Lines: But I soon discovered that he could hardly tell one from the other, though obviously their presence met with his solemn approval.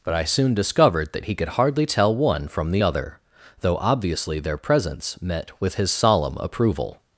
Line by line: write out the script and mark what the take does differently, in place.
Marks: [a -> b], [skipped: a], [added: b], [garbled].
But I soon discovered that he could hardly tell one from the other, though obviously their presence met with his solemn approval.